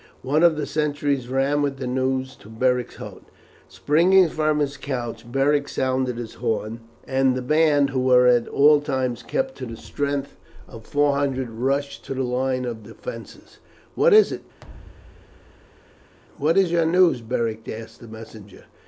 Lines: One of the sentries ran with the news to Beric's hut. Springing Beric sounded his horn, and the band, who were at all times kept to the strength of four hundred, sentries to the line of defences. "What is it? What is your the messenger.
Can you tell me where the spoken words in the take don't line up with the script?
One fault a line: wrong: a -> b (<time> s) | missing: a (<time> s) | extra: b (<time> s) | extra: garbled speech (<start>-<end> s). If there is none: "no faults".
extra: from his couch (4.3 s)
wrong: sentries -> rushed (11.5 s)
extra: news Beric asked (16.9 s)